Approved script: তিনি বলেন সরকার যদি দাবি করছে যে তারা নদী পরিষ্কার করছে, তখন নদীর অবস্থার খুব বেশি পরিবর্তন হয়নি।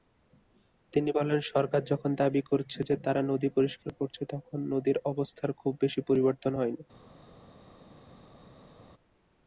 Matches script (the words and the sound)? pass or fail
fail